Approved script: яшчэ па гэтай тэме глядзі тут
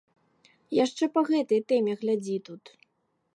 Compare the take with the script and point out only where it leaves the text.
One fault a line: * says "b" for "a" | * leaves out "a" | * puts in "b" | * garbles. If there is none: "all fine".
all fine